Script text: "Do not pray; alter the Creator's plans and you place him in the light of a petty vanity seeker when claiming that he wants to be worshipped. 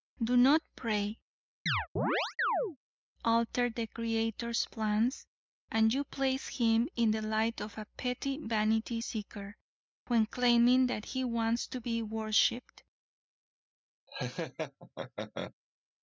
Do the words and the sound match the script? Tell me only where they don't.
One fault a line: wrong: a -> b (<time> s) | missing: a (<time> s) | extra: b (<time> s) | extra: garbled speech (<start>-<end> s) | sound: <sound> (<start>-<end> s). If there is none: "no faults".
sound: chirp (1.7-2.8 s)
sound: laugh (14.1-15.5 s)